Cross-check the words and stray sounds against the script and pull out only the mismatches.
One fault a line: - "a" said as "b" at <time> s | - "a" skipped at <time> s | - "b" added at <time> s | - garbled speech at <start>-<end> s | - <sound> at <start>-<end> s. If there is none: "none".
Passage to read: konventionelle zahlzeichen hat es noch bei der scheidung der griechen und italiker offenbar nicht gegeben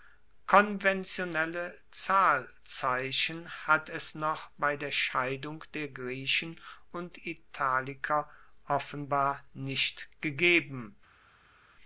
none